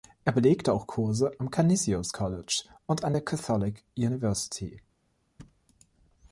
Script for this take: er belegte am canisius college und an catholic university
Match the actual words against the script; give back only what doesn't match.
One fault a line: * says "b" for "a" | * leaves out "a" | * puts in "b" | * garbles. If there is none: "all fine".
* puts in "auch kurse"
* puts in "der"